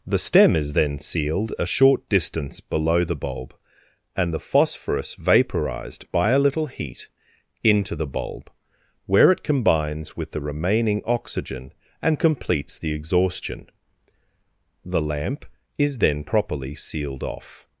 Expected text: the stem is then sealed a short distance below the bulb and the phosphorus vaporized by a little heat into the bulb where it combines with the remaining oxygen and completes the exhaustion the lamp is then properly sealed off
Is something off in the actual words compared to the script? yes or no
no